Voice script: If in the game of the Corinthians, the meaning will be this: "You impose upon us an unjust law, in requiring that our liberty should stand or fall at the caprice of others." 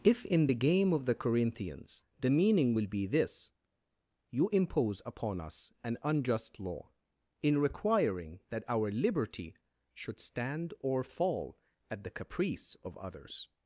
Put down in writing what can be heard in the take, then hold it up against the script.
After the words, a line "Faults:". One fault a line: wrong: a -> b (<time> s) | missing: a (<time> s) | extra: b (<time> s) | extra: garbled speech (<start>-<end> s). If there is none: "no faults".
If in the game of the Corinthians, the meaning will be this: "You impose upon us an unjust law, in requiring that our liberty should stand or fall at the caprice of others."
Faults:
no faults